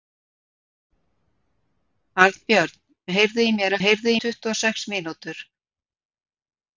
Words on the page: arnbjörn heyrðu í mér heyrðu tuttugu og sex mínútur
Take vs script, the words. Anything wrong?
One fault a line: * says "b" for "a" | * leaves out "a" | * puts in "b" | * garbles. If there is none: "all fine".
all fine